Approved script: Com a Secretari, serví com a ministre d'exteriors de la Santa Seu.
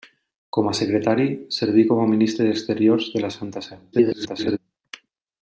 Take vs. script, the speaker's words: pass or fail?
fail